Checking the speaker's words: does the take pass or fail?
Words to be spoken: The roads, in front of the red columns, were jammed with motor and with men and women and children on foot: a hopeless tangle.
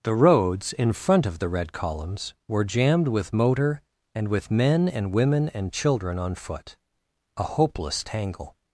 pass